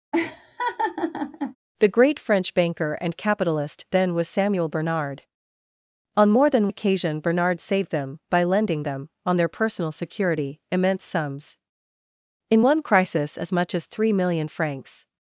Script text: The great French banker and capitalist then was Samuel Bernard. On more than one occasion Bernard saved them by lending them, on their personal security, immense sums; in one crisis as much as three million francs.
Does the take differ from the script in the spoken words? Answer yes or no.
yes